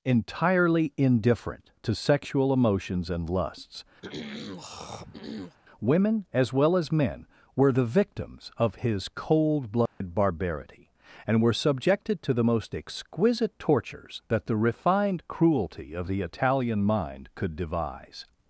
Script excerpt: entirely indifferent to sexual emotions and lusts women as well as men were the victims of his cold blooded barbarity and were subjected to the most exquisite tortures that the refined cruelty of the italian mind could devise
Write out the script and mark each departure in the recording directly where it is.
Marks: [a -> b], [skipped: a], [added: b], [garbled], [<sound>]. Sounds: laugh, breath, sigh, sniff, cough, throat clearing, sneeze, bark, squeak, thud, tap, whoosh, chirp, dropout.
entirely indifferent to sexual emotions and lusts [throat clearing] women as well as men were the victims of his cold blooded [dropout] barbarity and were subjected to the most exquisite tortures that the refined cruelty of the italian mind could devise